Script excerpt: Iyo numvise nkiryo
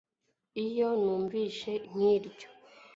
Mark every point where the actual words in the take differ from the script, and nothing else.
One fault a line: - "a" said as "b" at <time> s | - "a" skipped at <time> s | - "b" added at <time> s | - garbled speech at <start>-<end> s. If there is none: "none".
none